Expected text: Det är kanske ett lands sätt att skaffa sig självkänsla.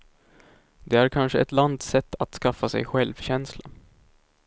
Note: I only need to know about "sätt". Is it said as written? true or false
true